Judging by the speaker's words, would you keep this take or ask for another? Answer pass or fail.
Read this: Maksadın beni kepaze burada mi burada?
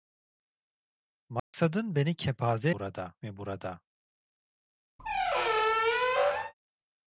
pass